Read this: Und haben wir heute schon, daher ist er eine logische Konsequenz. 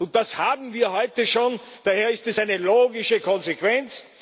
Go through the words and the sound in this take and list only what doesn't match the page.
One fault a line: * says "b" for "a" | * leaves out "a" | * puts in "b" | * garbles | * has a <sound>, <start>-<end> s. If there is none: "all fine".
* puts in "das"
* says "es" for "er"